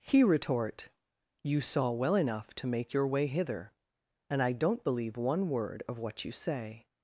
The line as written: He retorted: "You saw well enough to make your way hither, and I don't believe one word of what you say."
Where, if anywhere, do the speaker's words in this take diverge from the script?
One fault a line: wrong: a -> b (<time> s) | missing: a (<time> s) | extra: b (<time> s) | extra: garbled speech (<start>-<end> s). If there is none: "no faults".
wrong: retorted -> retort (0.2 s)